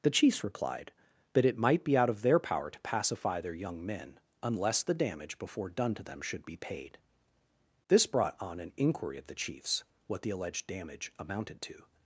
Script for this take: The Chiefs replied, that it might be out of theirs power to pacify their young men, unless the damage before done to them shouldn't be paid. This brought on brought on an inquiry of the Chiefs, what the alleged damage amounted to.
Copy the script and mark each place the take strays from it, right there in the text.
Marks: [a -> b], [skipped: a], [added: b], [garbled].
The Chiefs replied, that it might be out of [theirs -> their] power to pacify their young men, unless the damage before done to them [shouldn't -> should] be paid. This brought on [skipped: brought on] an inquiry of the Chiefs, what the alleged damage amounted to.